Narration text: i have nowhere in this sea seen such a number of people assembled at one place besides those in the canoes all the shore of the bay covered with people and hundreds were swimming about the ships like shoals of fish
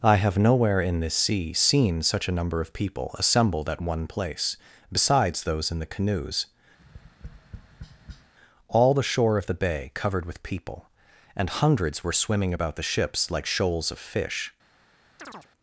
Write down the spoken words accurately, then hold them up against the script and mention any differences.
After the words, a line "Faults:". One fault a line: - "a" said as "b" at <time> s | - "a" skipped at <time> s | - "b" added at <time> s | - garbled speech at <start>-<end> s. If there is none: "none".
i have nowhere in this sea seen such a number of people assembled at one place besides those in the canoes all the shore of the bay covered with people and hundreds were swimming about the ships like shoals of fish
Faults:
none